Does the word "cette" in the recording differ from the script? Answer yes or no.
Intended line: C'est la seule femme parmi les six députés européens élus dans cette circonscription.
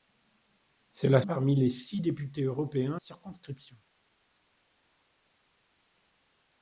yes